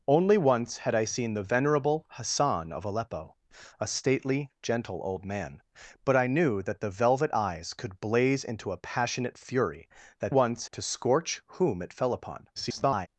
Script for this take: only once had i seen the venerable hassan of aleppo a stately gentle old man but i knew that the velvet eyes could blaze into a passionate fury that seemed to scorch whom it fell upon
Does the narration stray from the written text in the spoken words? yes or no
yes